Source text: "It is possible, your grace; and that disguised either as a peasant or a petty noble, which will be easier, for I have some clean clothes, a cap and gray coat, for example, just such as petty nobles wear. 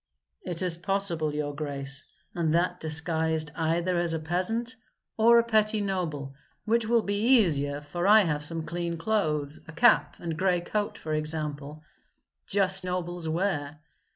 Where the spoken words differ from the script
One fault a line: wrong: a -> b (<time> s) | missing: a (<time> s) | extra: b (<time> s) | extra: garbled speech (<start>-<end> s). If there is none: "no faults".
missing: such as petty (12.9 s)